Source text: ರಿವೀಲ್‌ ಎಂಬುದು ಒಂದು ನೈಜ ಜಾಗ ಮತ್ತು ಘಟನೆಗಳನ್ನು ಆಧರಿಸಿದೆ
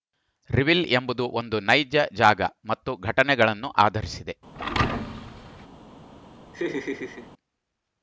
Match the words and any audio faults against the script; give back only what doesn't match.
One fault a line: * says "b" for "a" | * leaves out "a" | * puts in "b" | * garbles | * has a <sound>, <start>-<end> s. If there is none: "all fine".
* has a thud, 4.6-5.7 s
* has a laugh, 6.5-7.3 s